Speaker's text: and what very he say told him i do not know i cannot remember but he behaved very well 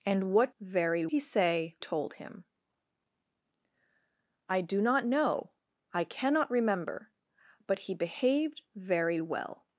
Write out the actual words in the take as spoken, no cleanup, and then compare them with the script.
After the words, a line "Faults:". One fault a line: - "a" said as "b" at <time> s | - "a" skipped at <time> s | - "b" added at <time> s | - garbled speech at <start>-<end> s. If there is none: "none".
and what very he say told him i do not know i cannot remember but he behaved very well
Faults:
none